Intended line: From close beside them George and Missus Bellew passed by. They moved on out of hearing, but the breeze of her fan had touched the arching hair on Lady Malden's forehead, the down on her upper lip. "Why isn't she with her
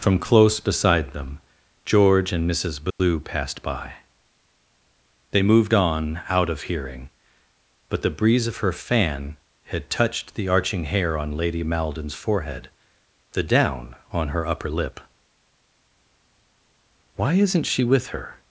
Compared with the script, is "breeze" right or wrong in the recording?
right